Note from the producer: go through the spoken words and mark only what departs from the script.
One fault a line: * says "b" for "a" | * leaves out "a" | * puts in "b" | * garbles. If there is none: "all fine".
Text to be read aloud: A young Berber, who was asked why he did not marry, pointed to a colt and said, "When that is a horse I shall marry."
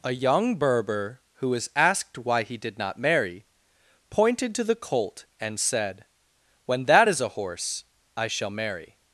* says "the" for "a"